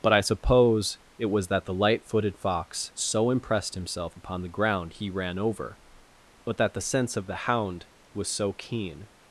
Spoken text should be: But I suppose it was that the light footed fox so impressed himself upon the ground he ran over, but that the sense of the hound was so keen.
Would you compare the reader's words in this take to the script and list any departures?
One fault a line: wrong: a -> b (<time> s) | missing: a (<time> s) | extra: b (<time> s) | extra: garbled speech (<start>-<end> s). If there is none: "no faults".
no faults